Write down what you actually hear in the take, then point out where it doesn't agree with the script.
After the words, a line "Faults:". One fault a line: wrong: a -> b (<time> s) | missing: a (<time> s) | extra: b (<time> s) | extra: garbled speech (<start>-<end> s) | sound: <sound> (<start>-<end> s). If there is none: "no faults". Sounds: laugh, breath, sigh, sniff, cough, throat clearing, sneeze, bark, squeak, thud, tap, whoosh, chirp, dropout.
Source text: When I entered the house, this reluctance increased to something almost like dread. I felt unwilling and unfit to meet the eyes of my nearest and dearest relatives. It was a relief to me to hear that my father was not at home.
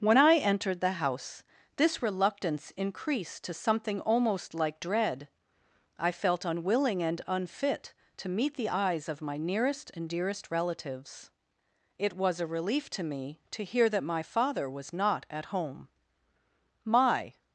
When I entered the house, this reluctance increased to something almost like dread. I felt unwilling and unfit to meet the eyes of my nearest and dearest relatives. It was a relief to me to hear that my father was not at home. My
Faults:
extra: My (16.8 s)